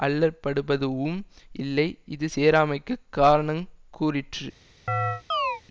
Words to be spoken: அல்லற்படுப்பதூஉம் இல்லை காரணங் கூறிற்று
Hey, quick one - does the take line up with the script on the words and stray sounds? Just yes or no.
no